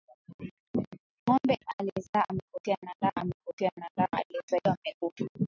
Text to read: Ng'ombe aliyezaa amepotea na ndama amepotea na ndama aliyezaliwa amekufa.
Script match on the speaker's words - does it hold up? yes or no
yes